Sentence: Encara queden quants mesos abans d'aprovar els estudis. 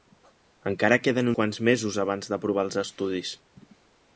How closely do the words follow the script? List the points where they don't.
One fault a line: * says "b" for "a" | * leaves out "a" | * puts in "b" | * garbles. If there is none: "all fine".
all fine